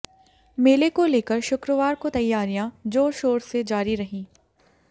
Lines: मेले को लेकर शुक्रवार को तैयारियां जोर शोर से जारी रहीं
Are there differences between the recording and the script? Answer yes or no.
no